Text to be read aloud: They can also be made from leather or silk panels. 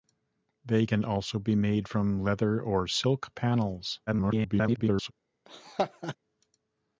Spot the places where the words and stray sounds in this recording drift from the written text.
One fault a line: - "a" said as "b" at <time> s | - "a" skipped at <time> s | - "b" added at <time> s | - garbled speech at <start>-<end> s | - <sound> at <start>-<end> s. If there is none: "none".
- garbled speech at 4.1-5.1 s
- laugh at 5.5-6.2 s